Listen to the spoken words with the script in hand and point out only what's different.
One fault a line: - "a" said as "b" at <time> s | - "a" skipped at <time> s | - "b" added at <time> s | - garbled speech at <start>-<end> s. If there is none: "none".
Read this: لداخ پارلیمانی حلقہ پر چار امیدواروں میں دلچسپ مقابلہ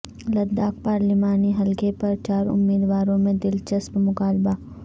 none